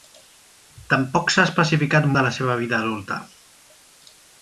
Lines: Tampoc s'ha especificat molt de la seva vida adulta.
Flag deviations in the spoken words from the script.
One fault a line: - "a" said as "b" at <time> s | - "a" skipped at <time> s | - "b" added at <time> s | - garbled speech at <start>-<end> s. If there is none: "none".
- "molt" skipped at 2.1 s